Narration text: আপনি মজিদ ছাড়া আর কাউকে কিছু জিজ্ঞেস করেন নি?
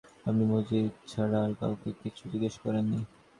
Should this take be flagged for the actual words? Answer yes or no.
no